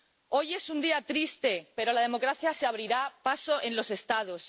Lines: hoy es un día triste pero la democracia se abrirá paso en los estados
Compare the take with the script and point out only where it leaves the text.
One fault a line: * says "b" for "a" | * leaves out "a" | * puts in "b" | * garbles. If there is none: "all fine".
all fine